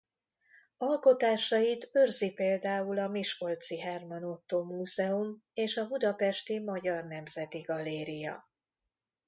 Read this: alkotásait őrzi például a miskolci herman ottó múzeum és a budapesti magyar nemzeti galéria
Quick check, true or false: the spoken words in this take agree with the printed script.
true